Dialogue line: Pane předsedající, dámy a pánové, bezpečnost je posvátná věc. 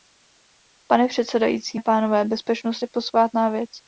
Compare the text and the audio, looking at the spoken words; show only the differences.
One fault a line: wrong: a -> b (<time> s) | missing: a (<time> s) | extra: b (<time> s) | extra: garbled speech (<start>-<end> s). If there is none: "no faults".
missing: dámy (1.8 s)